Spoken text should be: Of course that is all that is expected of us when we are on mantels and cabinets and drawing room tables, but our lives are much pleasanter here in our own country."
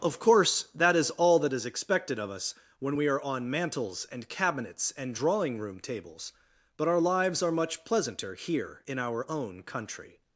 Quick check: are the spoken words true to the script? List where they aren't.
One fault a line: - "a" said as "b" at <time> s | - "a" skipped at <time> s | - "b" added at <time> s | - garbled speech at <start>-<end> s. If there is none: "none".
none